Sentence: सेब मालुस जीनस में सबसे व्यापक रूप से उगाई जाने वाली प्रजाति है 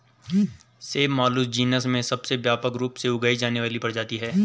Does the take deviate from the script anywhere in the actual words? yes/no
no